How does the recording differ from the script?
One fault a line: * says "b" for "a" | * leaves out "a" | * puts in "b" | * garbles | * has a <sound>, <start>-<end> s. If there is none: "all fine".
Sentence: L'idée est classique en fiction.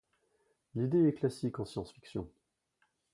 * puts in "science"